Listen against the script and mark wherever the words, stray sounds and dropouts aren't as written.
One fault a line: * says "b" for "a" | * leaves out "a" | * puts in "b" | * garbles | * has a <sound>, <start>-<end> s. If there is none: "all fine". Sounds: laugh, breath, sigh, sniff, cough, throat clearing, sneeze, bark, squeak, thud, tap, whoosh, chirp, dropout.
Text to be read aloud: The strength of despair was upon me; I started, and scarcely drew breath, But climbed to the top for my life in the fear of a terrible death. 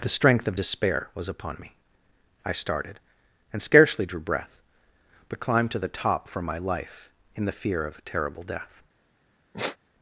* has a sigh, 9.5-9.8 s